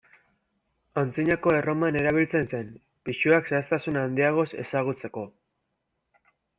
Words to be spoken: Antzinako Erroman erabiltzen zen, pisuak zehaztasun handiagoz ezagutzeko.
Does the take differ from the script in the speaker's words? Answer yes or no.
no